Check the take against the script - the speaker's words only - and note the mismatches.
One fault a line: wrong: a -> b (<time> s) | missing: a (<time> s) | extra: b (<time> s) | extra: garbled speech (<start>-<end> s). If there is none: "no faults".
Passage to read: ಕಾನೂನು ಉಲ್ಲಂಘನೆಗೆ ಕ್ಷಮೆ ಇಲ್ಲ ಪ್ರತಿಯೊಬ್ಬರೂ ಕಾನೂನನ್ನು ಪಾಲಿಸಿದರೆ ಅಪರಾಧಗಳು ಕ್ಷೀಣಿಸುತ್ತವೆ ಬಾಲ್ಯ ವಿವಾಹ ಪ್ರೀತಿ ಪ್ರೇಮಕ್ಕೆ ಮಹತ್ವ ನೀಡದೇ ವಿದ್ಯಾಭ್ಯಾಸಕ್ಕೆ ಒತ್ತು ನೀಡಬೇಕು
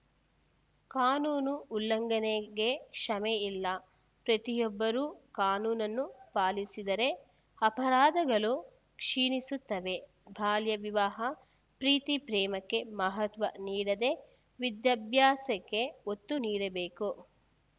no faults